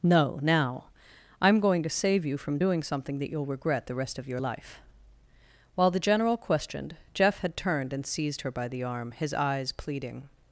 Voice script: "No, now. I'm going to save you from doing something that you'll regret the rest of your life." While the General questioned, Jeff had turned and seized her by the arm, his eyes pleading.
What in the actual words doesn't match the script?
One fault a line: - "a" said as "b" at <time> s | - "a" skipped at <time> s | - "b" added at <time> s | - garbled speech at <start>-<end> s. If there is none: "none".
none